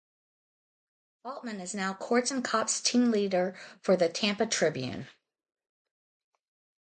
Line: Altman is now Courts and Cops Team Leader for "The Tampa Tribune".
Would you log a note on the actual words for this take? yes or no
no